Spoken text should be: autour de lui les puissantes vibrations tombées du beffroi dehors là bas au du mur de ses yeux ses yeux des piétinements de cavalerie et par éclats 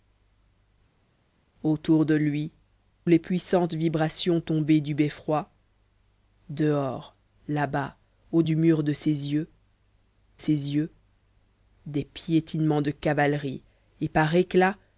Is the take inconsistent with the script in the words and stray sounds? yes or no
no